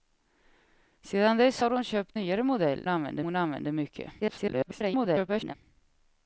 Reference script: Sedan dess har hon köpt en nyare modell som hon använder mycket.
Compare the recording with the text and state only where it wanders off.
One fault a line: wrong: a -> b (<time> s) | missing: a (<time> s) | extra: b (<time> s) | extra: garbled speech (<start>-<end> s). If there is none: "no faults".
missing: en (2.2 s)
wrong: som -> använder (2.9 s)
extra: garbled speech (4.2-5.5 s)